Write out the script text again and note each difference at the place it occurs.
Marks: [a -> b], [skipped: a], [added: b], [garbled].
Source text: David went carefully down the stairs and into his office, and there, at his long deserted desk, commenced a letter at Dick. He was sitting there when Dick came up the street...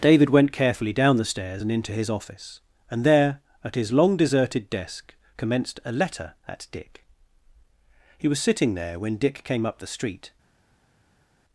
David went carefully down the stairs and into his office, and there, at his long deserted desk, commenced a letter at Dick. He was sitting there when Dick came up the street...